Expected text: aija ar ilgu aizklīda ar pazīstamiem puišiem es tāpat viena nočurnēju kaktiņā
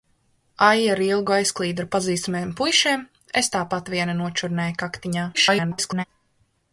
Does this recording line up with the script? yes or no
no